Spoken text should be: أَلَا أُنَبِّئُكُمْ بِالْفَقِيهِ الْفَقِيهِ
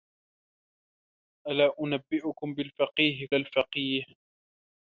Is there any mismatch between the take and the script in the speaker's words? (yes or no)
no